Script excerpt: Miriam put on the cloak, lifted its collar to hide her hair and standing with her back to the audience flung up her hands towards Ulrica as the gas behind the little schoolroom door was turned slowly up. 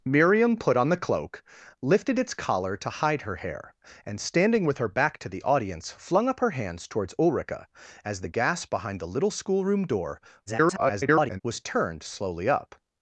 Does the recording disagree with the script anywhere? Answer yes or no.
yes